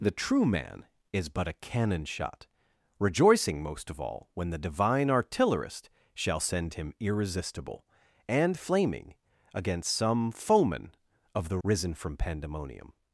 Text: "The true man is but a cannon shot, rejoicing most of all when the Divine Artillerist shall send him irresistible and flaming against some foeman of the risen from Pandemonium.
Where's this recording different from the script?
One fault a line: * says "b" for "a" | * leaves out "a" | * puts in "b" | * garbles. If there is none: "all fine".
all fine